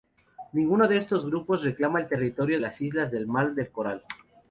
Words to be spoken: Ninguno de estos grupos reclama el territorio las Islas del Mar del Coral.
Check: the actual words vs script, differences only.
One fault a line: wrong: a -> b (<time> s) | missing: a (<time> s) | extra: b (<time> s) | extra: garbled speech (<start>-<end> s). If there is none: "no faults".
no faults